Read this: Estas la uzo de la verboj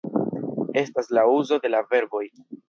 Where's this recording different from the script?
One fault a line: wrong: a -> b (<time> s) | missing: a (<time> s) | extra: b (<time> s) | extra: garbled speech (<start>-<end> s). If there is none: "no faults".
no faults